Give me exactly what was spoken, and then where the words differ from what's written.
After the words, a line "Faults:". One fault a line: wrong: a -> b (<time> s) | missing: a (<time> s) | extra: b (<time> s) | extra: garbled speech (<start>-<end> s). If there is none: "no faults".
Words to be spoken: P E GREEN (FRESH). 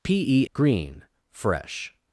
P E GREEN (FRESH).
Faults:
no faults